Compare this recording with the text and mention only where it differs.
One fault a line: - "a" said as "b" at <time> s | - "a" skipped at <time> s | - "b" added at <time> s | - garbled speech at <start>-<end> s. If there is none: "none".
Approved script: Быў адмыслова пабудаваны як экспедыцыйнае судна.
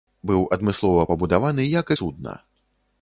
- "экспедыцыйнае" skipped at 1.9 s